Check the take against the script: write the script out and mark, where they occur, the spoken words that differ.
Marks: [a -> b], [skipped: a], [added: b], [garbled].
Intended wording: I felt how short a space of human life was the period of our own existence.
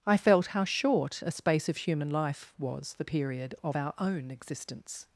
I felt how short a space of human life was the period of our own existence.